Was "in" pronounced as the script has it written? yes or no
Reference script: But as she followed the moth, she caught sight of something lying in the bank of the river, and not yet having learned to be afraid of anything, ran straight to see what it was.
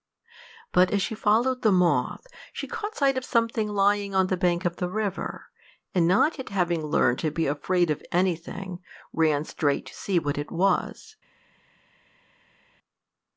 no